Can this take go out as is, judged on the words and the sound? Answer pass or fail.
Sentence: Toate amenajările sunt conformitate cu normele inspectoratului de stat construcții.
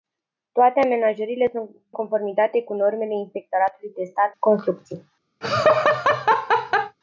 fail